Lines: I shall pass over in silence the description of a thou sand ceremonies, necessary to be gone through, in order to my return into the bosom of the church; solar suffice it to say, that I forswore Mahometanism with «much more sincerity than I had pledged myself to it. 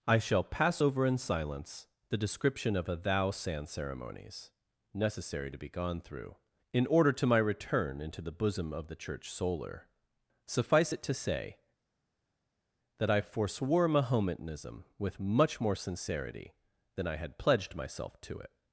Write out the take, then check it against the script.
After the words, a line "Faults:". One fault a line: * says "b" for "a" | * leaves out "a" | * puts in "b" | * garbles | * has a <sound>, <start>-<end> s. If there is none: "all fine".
I shall pass over in silence the description of a thou sand ceremonies, necessary to be gone through, in order to my return into the bosom of the church; solar suffice it to say, that I forswore Mahometanism with «much more sincerity than I had pledged myself to it.
Faults:
all fine